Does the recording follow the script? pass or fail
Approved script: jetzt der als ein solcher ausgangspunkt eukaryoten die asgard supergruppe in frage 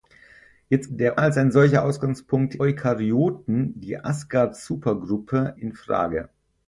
pass